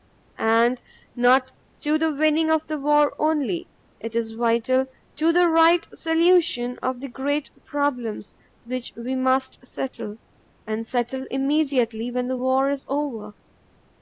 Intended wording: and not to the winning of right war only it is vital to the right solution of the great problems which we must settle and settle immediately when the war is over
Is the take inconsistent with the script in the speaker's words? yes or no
yes